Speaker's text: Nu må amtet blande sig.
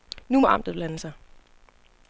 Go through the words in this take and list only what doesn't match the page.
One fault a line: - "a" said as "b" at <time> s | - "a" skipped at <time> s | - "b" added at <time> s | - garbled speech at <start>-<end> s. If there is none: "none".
none